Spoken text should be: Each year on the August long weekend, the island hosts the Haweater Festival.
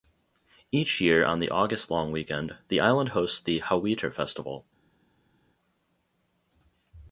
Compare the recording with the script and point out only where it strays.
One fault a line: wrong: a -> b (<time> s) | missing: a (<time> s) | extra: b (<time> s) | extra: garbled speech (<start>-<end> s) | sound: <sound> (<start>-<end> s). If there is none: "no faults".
no faults